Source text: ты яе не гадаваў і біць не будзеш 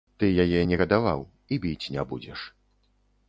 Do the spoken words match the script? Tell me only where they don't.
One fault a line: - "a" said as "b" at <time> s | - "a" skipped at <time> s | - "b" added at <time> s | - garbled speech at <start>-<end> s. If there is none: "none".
none